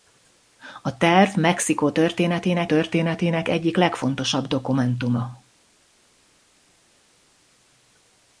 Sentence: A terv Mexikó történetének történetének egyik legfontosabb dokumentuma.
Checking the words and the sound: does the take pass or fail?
pass